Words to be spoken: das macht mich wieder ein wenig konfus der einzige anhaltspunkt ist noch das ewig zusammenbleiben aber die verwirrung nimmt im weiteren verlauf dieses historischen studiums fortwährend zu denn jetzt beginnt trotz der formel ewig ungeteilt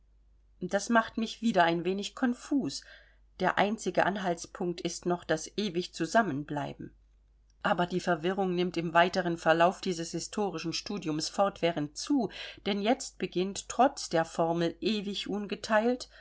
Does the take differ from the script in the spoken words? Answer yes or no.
no